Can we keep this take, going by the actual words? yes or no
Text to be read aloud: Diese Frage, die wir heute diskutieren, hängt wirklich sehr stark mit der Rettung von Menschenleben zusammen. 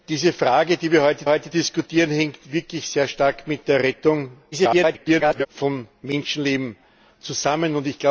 no